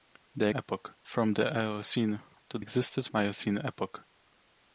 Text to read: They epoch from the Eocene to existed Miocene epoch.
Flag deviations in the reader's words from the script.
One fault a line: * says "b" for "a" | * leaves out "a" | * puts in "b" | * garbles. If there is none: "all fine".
all fine